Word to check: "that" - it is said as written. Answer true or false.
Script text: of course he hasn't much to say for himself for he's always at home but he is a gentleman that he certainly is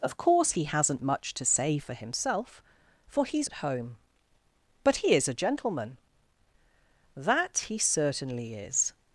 true